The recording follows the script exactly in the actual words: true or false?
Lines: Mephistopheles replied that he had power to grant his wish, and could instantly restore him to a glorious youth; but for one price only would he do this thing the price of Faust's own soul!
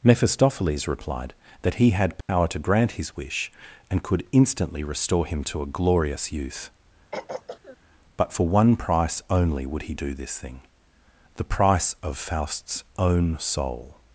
true